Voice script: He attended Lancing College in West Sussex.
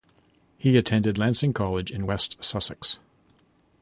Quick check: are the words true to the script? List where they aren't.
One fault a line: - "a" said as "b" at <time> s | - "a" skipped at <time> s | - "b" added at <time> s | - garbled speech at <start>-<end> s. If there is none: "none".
none